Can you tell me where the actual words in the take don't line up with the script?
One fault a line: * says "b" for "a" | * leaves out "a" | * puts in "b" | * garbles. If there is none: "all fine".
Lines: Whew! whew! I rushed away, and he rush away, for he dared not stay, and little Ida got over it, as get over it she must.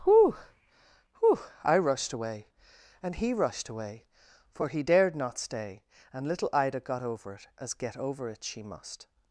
* says "rushed" for "rush"